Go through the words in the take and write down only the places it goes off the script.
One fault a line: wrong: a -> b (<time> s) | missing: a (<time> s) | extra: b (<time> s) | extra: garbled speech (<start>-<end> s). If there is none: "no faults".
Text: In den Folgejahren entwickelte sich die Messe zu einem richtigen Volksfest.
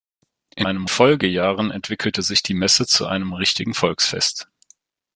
wrong: den -> einem (0.6 s)